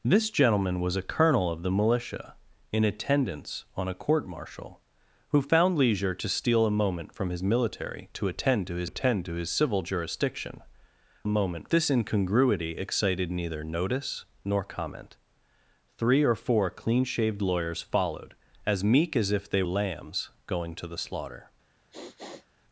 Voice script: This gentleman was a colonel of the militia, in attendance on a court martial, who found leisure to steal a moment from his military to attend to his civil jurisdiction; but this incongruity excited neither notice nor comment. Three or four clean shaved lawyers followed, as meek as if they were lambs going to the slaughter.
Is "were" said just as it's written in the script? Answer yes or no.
no